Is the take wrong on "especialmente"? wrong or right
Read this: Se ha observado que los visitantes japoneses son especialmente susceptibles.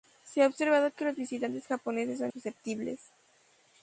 wrong